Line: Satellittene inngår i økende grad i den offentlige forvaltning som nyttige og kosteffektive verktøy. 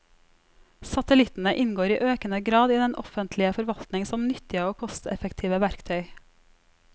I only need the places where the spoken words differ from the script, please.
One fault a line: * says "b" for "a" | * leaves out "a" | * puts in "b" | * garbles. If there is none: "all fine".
all fine